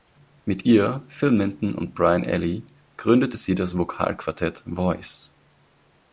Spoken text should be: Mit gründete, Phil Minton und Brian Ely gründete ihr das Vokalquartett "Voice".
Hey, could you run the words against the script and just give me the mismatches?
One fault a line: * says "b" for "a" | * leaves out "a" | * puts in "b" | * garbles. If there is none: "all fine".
* says "ihr" for "gründete"
* says "sie" for "ihr"